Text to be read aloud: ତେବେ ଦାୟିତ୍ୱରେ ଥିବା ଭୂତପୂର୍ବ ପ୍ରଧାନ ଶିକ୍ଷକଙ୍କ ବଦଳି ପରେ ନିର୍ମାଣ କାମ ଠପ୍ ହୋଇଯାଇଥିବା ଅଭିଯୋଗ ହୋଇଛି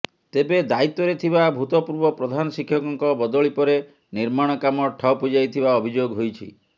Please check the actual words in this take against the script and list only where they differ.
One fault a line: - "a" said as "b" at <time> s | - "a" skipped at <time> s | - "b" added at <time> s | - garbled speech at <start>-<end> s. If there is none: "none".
none